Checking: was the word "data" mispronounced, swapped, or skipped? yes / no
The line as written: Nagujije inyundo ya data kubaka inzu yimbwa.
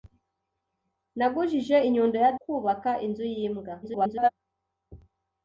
yes